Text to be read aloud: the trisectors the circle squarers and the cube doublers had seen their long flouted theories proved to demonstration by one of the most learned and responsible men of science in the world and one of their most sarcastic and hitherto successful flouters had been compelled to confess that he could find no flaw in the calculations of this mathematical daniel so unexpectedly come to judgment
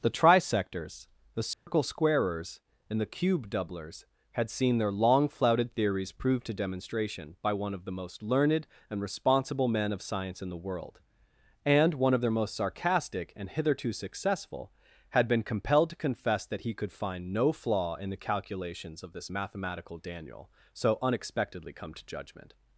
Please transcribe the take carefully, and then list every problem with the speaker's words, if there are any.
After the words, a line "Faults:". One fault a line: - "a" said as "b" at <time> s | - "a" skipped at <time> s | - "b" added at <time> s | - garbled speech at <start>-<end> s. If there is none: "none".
the trisectors the circle squarers and the cube doublers had seen their long flouted theories proved to demonstration by one of the most learned and responsible men of science in the world and one of their most sarcastic and hitherto successful had been compelled to confess that he could find no flaw in the calculations of this mathematical daniel so unexpectedly come to judgment
Faults:
- "flouters" skipped at 14.7 s